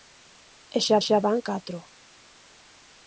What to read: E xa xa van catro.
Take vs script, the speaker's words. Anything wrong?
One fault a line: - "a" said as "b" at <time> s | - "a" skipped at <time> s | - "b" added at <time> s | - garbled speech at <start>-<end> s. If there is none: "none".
none